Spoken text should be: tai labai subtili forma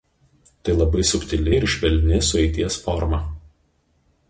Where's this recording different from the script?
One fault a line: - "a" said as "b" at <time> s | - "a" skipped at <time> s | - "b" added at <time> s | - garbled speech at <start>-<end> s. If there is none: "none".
- "ir švelni sueities" added at 1.5 s